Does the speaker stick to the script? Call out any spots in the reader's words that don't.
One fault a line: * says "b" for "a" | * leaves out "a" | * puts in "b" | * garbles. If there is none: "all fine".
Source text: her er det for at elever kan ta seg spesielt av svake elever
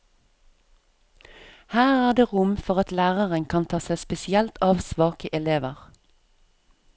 * puts in "rom"
* says "læreren" for "elever"